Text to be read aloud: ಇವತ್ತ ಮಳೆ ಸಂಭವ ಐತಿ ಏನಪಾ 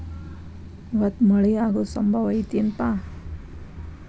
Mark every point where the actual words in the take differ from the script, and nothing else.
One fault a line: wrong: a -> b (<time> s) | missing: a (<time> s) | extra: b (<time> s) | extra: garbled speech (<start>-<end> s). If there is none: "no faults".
extra: ಆಗು (1.6 s)